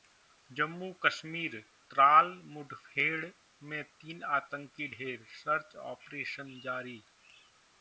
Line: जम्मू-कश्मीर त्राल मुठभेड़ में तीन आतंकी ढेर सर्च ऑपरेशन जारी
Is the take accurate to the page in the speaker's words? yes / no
yes